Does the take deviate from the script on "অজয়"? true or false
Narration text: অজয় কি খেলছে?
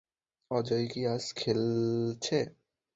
false